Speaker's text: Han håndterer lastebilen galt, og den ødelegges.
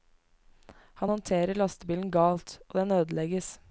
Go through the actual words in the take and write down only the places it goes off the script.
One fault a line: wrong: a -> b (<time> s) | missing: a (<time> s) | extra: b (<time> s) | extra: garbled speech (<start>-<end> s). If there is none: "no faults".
no faults